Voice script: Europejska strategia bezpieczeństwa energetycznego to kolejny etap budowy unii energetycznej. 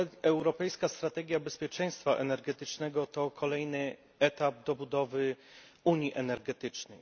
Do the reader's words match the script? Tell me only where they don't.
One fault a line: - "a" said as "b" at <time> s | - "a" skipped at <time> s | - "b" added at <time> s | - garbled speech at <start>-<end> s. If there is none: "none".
none